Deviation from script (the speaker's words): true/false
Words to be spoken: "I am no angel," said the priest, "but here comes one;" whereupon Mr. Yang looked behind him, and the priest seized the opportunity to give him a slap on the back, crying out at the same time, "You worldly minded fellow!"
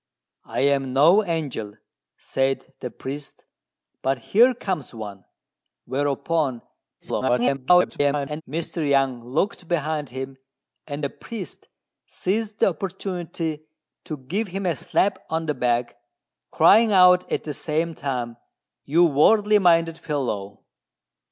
true